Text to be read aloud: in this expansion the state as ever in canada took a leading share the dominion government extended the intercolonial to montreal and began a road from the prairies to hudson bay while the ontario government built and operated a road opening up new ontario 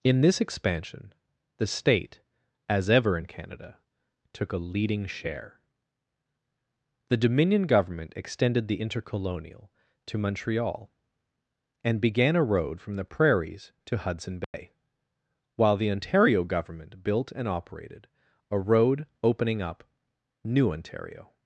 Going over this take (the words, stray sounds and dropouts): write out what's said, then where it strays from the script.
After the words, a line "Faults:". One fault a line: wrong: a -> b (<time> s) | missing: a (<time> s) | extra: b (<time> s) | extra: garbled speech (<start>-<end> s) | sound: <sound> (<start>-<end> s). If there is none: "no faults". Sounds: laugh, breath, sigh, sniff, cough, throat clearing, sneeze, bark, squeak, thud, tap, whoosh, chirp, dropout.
in this expansion the state as ever in canada took a leading share the dominion government extended the intercolonial to montreal and began a road from the prairies to hudson bay while the ontario government built and operated a road opening up new ontario
Faults:
sound: dropout (14.4-14.5 s)